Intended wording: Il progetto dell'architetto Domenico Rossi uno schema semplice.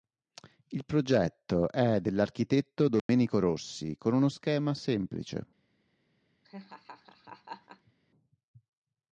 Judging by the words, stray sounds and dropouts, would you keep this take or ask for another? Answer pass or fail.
fail